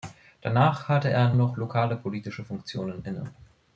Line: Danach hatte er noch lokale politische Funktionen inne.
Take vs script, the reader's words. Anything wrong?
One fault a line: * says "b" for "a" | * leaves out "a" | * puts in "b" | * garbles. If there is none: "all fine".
all fine